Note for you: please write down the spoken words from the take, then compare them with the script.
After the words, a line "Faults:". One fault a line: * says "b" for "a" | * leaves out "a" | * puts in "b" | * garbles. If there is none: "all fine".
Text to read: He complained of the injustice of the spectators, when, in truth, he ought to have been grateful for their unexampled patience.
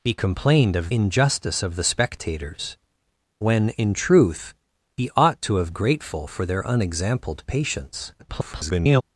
He complained of injustice of the spectators, when, in truth, he ought to have grateful for their unexampled patience. [garbled]
Faults:
* leaves out "the"
* leaves out "been"
* garbles